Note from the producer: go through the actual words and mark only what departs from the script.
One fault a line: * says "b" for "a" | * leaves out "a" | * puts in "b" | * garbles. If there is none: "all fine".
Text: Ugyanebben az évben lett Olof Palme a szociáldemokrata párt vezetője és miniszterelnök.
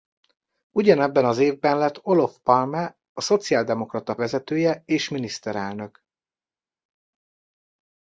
* leaves out "párt"